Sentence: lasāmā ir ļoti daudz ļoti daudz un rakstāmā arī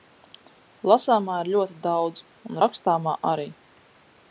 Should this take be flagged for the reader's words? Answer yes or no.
yes